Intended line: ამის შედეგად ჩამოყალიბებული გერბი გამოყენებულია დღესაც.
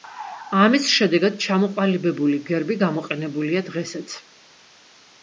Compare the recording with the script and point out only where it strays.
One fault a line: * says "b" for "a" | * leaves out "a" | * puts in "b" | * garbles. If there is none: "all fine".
all fine